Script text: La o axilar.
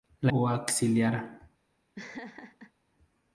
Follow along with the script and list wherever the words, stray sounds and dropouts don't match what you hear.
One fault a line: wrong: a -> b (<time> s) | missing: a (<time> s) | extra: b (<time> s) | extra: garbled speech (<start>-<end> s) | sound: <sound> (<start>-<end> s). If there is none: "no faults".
sound: laugh (1.9-2.7 s)